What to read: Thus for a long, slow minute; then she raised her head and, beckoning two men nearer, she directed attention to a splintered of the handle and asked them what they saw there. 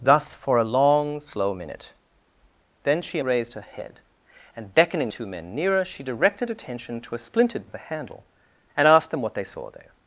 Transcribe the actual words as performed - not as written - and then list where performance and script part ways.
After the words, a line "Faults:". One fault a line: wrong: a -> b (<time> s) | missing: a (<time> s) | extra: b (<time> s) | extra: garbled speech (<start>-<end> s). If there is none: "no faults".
Thus for a long, slow minute; then she raised her head and, beckoning two men nearer, she directed attention to a splintered of the handle and asked them what they saw there.
Faults:
no faults